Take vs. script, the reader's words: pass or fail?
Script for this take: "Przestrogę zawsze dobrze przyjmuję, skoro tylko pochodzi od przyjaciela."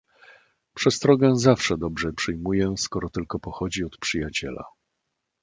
pass